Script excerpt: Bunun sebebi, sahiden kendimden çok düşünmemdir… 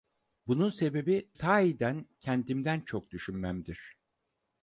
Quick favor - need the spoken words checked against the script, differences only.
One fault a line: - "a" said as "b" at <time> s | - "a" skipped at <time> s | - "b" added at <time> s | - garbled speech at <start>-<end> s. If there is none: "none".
none